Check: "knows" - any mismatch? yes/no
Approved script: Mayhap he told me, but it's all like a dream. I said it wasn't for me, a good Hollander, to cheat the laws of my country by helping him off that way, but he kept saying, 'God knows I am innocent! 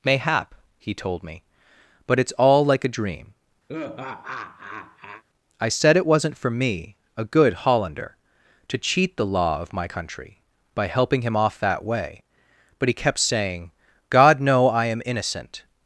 yes